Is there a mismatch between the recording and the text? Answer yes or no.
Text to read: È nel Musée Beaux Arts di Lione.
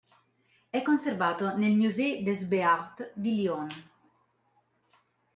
yes